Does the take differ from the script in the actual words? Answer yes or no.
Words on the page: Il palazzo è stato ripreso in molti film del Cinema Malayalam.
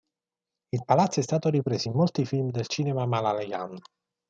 no